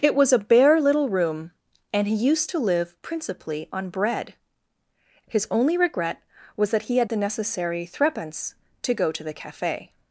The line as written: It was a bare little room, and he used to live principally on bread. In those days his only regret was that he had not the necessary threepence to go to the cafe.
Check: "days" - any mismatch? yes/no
yes